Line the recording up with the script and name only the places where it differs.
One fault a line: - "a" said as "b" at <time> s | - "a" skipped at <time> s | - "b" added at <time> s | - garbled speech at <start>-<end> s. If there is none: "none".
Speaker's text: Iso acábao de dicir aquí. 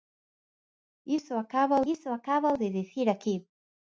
- "iso acábao" added at 1.9 s